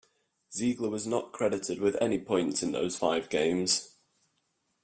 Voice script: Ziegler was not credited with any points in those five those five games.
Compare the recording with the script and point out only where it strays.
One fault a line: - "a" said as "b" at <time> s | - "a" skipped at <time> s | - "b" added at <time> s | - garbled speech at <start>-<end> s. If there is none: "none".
- "those five" skipped at 3.3 s